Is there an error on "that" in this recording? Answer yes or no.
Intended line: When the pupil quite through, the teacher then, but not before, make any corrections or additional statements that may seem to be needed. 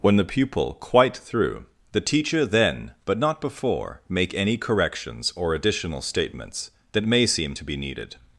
no